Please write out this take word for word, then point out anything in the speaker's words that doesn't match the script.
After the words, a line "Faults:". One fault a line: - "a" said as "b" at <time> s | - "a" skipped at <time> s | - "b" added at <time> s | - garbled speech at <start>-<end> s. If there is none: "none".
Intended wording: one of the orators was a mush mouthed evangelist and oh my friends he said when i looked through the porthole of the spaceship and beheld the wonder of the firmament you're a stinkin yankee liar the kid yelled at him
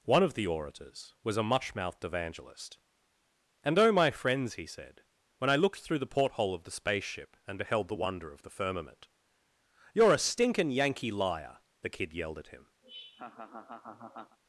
one of the orators was a much mouthed evangelist and oh my friends he said when i looked through the porthole of the spaceship and beheld the wonder of the firmament you're a stinkin yankee liar the kid yelled at him
Faults:
- "mush" said as "much" at 1.4 s